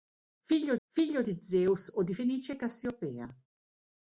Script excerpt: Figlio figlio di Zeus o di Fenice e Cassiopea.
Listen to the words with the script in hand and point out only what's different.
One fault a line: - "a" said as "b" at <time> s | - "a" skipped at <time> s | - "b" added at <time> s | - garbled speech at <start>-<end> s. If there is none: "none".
none